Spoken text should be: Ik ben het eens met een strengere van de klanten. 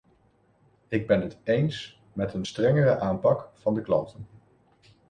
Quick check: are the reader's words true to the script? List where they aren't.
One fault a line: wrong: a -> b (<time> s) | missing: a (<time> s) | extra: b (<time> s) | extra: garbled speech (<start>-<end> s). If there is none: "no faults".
extra: aanpak (3.0 s)